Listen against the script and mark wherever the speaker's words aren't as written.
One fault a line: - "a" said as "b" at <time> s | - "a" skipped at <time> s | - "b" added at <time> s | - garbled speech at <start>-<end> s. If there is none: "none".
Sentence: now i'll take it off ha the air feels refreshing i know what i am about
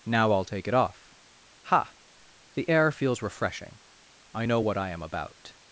none